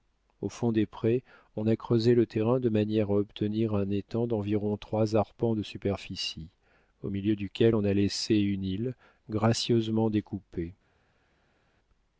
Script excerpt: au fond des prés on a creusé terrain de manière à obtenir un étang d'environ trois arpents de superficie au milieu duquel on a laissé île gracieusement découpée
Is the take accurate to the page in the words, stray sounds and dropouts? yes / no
no